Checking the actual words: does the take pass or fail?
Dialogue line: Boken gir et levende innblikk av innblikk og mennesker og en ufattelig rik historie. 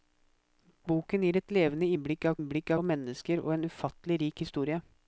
pass